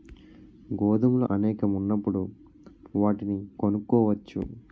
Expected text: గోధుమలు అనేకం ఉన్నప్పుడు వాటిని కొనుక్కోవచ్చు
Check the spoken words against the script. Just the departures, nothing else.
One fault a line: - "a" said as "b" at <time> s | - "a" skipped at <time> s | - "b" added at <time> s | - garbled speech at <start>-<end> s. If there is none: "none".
none